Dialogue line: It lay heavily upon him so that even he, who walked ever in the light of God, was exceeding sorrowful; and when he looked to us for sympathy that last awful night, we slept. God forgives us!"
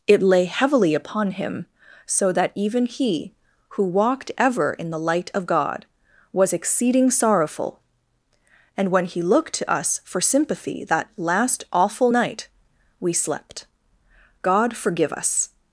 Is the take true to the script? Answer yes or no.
no